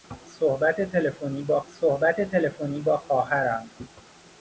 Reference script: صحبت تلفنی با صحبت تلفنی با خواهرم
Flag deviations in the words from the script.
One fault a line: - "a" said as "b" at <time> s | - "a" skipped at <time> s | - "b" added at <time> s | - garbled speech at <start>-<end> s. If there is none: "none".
none